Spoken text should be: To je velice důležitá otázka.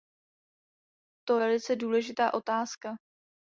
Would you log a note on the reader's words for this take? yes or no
yes